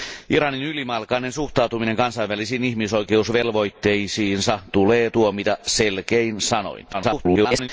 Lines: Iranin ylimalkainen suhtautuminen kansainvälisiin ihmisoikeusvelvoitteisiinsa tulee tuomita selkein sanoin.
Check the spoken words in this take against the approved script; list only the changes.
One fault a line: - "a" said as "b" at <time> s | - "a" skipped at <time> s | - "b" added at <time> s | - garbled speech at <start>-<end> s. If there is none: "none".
- garbled speech at 6.9-7.7 s